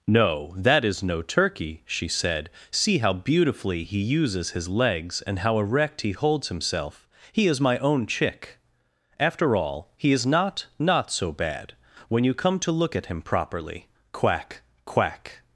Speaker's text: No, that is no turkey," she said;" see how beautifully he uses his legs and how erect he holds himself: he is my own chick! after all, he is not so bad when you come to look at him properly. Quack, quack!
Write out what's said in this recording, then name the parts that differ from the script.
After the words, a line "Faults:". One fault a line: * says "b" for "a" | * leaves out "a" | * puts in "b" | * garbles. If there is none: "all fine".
No, that is no turkey," she said;" see how beautifully he uses his legs and how erect he holds himself: he is my own chick! after all, he is not not so bad when you come to look at him properly. Quack, quack!
Faults:
* puts in "not"